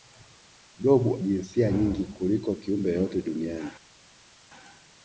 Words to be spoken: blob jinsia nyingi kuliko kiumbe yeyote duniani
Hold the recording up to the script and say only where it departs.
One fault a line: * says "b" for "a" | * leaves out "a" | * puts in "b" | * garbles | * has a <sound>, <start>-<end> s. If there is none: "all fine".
all fine